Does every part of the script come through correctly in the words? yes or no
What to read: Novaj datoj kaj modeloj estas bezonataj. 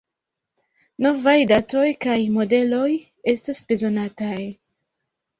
yes